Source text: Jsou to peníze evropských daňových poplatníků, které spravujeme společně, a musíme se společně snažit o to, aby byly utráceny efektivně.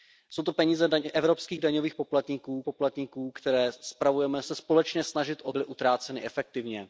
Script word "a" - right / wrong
wrong